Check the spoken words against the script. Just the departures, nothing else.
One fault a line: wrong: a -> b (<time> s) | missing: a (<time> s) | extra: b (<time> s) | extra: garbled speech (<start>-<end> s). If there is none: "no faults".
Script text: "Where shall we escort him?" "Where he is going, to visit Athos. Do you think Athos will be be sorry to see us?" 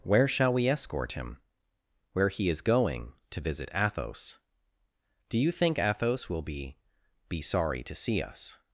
no faults